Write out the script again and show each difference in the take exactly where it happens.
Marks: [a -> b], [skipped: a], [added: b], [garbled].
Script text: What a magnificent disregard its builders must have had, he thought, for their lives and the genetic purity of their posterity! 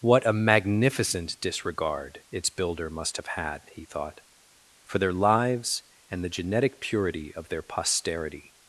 What a magnificent disregard its [builders -> builder] must have had, he thought, for their lives and the genetic purity of their posterity!